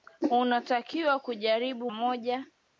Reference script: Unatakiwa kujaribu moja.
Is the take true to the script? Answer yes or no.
yes